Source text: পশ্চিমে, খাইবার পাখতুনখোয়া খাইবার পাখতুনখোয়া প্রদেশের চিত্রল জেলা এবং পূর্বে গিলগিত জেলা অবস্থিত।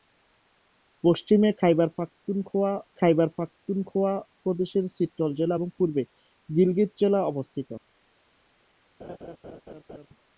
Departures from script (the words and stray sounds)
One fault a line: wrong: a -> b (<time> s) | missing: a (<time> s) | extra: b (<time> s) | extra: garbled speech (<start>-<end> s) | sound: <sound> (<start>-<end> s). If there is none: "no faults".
sound: laugh (9.0-10.1 s)